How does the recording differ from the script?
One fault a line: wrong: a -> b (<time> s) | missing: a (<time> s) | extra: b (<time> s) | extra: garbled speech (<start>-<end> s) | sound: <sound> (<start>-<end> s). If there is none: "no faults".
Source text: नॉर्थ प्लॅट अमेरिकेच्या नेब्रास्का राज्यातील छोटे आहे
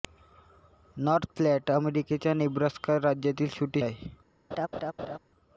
sound: laugh (4.5-5.2 s)